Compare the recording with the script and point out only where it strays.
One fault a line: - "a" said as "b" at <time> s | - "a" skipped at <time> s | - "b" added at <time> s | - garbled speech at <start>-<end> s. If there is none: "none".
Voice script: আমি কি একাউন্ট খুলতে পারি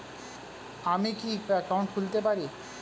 none